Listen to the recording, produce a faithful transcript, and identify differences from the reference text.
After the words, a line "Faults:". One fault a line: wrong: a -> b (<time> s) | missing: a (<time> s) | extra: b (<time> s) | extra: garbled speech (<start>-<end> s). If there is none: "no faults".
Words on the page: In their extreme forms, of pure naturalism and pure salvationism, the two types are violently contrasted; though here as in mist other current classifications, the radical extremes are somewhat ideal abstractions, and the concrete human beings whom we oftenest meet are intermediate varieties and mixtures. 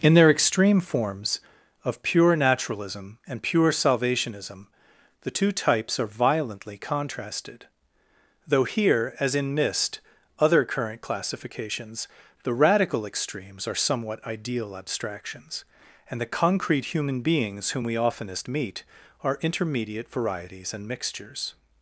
In their extreme forms, of pure naturalism and pure salvationism, the two types are violently contrasted; though here as in mist other current classifications, the radical extremes are somewhat ideal abstractions, and the concrete human beings whom we oftenest meet are intermediate varieties and mixtures.
Faults:
no faults